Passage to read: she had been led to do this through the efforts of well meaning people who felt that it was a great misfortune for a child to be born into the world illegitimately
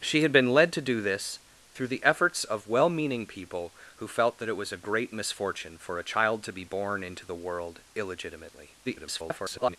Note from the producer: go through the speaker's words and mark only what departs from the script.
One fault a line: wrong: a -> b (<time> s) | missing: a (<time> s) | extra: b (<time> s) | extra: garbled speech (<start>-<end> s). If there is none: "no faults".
extra: garbled speech (8.8-9.8 s)